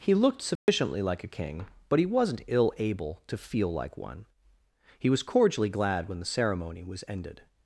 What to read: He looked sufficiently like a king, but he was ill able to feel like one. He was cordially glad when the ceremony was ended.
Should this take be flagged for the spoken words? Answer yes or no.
yes